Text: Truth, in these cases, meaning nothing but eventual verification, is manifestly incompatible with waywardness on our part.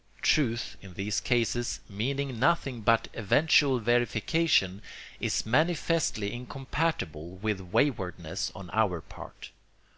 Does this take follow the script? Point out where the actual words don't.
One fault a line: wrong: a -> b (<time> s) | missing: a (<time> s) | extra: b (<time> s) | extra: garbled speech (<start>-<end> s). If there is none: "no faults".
no faults